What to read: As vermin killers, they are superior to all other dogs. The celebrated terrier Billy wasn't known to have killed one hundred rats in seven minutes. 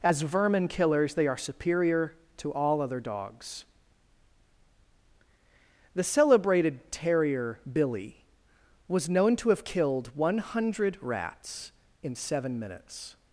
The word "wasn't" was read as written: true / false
false